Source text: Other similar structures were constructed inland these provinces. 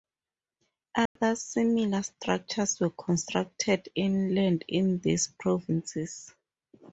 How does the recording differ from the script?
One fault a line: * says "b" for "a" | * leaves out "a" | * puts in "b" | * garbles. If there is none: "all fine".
* puts in "in"